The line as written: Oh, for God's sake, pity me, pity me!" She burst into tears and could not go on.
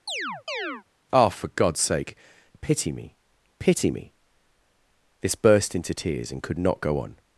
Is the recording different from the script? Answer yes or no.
yes